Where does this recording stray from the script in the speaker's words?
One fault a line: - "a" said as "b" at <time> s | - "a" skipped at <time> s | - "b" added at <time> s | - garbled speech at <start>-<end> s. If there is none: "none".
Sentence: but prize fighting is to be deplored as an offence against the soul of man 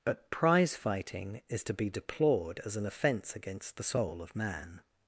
none